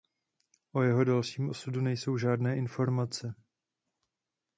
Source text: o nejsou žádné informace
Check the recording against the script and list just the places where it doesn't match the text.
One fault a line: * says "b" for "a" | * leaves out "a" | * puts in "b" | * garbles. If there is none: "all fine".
* puts in "jeho dalším osudu"